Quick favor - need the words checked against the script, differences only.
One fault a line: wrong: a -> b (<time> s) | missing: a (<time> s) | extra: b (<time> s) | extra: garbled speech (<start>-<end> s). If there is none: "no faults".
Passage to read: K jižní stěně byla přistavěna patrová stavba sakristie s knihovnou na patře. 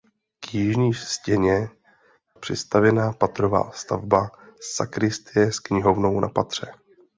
missing: byla (1.7 s)